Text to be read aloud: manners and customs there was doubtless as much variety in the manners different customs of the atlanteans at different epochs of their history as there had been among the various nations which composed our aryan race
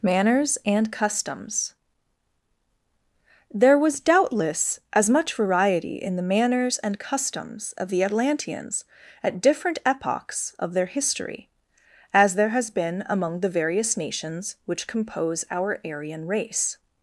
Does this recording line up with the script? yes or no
no